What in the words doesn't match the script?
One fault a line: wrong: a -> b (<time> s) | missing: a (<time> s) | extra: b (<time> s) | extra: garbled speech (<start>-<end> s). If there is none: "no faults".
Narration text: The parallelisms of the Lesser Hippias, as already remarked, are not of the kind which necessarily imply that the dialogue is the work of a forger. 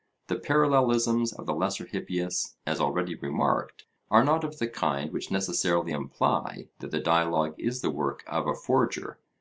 no faults